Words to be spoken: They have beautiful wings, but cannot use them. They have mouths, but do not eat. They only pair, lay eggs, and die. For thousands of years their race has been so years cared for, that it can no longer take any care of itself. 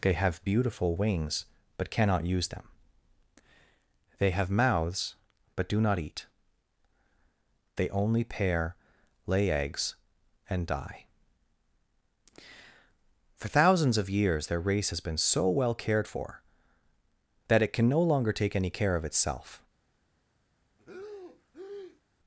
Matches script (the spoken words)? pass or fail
fail